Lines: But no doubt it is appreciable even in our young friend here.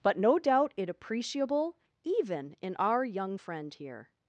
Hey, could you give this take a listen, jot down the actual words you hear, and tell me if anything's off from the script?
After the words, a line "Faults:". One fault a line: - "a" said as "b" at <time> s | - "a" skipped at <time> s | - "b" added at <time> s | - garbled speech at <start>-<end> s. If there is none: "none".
But no doubt it appreciable even in our young friend here.
Faults:
- "is" skipped at 0.9 s